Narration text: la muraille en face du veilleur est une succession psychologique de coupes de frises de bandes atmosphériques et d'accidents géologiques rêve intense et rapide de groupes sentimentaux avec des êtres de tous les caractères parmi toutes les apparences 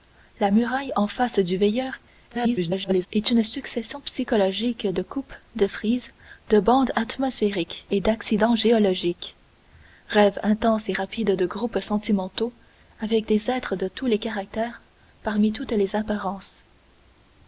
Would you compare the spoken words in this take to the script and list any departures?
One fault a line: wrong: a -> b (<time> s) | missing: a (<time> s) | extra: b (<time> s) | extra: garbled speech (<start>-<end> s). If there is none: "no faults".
extra: garbled speech (2.3-3.1 s)